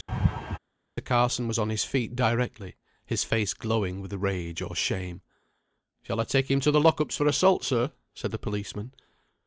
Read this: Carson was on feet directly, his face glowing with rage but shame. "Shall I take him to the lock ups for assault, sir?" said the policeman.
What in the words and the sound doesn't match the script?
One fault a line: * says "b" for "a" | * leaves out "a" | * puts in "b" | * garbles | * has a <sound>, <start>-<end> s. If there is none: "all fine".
* has a laugh, 0.1-0.6 s
* puts in "his"
* says "or" for "but"